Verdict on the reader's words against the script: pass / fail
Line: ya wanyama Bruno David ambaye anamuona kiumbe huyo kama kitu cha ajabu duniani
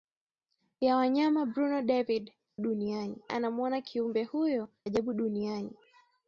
fail